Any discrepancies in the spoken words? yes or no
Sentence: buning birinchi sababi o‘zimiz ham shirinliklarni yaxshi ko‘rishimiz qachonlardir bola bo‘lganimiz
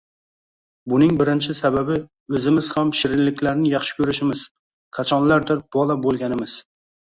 no